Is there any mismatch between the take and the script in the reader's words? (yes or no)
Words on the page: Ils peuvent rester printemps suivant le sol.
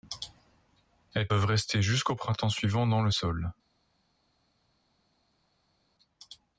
yes